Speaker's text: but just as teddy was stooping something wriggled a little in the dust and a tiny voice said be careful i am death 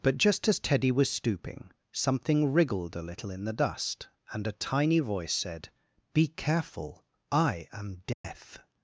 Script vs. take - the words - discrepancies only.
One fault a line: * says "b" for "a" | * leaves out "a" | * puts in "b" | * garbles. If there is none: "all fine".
all fine